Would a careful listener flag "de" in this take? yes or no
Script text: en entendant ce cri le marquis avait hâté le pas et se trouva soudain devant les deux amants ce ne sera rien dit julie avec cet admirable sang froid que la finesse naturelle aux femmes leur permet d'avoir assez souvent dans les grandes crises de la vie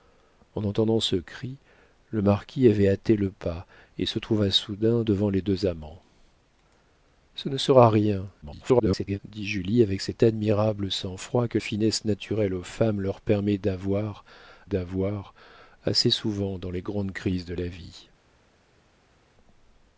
no